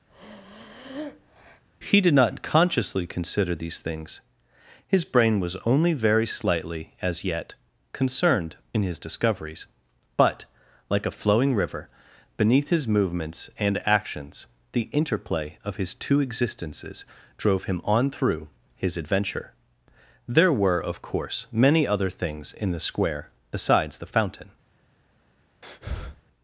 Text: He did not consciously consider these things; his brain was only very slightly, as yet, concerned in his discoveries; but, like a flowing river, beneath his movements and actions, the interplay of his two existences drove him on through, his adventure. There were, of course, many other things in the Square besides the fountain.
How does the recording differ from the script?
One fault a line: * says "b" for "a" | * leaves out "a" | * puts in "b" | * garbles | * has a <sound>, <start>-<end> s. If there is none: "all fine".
* has a breath, 0.1-1.6 s
* has a breath, 25.6-26.2 s